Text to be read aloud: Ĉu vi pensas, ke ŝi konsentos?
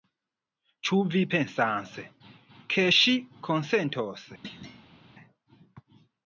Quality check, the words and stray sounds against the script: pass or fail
fail